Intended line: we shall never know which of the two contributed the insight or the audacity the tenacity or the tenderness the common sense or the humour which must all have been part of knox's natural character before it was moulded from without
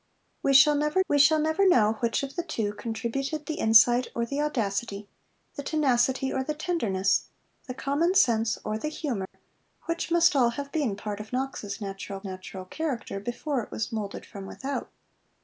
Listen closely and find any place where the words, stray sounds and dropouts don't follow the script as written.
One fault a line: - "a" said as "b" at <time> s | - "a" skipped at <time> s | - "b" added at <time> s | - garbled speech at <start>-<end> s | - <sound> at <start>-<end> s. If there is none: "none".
- "we shall never" added at 1.1 s
- dropout at 9.3-9.3 s
- "natural" added at 12.2 s